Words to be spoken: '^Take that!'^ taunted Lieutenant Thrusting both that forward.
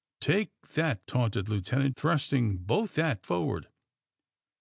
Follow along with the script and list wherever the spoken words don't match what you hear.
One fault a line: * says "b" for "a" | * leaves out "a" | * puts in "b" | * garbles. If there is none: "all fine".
all fine